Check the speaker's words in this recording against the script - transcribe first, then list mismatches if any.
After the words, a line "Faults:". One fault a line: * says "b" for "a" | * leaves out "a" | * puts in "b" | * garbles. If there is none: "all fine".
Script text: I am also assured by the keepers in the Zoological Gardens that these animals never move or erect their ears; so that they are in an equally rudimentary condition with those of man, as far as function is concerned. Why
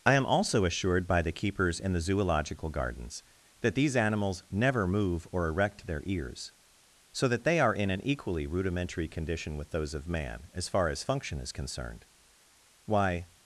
I am also assured by the keepers in the Zoological Gardens that these animals never move or erect their ears; so that they are in an equally rudimentary condition with those of man, as far as function is concerned. Why
Faults:
all fine